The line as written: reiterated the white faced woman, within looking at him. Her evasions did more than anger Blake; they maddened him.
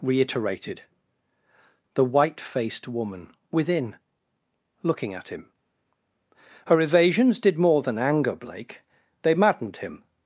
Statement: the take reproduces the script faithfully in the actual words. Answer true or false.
true